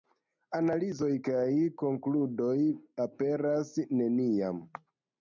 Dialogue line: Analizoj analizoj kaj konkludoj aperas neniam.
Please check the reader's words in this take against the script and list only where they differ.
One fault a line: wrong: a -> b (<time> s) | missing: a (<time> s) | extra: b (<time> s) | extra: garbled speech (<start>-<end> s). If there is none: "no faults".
missing: analizoj (1.1 s)